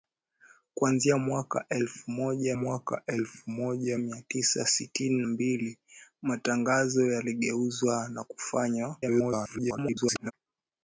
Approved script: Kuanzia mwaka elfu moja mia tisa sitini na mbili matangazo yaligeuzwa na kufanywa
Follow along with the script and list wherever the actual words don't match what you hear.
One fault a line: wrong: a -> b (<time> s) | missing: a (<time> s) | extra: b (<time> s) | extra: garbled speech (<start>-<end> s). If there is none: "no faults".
extra: mwaka elfu moja (2.5 s)
missing: na (5.2 s)
extra: garbled speech (9.0-10.3 s)